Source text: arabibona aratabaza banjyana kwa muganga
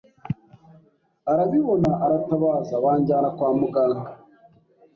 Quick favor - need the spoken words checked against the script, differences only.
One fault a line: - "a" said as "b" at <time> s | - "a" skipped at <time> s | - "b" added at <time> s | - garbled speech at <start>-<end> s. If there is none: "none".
none